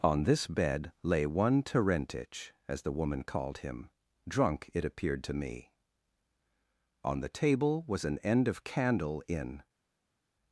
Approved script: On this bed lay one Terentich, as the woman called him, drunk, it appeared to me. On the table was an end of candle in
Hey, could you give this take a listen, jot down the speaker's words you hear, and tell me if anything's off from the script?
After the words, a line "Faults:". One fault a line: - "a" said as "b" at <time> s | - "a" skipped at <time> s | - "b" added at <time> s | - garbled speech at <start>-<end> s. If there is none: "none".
On this bed lay one Terentich, as the woman called him, drunk, it appeared to me. On the table was an end of candle in
Faults:
none